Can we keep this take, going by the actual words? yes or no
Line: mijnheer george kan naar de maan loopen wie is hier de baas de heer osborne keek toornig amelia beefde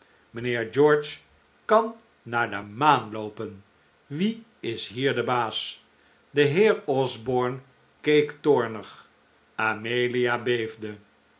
yes